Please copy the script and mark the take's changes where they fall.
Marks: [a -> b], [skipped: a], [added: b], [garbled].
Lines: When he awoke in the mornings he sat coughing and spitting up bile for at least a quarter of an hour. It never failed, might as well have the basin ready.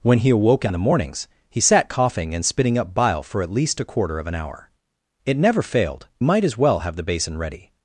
When he awoke in the mornings he sat coughing and spitting up bile for at least a quarter of an hour. It never failed, might as well have the basin ready.